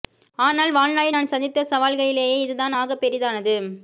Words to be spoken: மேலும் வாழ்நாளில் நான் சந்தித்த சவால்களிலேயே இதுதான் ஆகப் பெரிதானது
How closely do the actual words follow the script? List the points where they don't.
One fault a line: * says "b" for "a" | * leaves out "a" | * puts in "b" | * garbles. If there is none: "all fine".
* says "ஆனால்" for "மேலும்"